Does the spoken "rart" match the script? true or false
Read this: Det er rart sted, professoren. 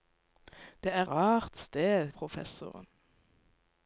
true